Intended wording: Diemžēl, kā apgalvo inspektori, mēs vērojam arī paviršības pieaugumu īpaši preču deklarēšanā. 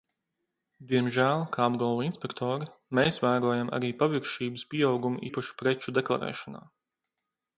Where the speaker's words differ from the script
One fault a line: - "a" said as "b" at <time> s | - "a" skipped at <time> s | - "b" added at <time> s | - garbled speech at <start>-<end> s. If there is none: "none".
none